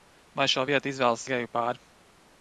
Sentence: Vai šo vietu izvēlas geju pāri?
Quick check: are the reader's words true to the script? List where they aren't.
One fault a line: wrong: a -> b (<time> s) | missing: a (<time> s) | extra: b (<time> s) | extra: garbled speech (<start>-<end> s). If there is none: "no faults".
no faults